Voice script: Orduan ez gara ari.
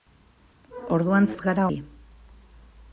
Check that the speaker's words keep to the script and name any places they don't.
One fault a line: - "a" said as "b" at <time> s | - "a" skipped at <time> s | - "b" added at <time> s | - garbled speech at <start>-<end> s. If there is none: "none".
none